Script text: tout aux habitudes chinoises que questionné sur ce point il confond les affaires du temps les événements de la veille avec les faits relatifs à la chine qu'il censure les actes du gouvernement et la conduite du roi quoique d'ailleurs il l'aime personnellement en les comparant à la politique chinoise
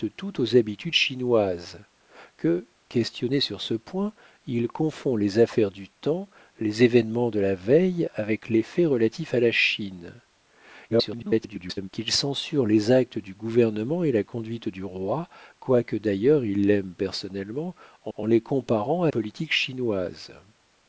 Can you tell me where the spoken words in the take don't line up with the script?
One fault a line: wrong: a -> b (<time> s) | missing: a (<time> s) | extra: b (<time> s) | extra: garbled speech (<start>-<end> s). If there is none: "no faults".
extra: garbled speech (10.9-11.9 s)
extra: en (18.2 s)
missing: la (19.1 s)